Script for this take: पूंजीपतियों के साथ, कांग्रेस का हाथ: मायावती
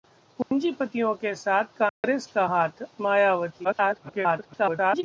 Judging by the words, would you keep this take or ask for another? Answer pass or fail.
fail